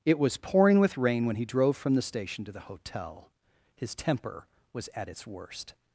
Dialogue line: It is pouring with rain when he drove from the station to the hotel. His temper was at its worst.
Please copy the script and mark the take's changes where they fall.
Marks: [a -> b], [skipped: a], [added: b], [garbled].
It [is -> was] pouring with rain when he drove from the station to the hotel. His temper was at its worst.